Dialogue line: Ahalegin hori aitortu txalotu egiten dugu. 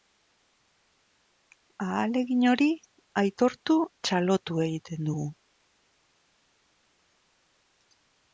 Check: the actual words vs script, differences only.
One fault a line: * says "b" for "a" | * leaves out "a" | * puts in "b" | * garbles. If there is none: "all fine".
all fine